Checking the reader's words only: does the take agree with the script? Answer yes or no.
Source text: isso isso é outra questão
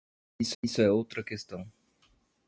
yes